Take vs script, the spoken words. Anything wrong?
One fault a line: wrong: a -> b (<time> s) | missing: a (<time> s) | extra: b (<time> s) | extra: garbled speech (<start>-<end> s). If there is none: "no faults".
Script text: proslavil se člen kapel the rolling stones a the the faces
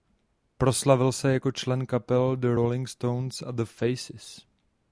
extra: jako (1.3 s)
missing: the (3.6 s)